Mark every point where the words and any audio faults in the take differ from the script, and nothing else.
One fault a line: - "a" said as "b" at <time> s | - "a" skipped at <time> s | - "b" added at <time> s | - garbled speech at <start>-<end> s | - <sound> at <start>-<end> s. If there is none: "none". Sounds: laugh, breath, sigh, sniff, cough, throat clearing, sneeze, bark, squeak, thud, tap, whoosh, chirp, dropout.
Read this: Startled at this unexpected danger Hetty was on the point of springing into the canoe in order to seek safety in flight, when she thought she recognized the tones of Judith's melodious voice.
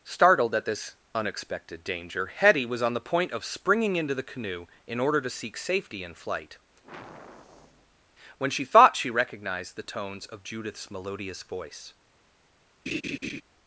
- sigh at 6.8-8.0 s
- laugh at 12.9-13.4 s